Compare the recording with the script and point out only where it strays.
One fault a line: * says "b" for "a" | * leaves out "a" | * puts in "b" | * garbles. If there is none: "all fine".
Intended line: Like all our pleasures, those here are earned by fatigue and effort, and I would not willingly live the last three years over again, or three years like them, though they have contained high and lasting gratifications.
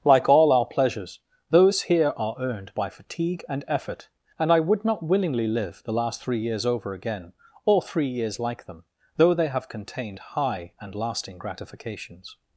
all fine